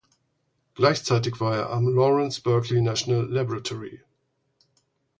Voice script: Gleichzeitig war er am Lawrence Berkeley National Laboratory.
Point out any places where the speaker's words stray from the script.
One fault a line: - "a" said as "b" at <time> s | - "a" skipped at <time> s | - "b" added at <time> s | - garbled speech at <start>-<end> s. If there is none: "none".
none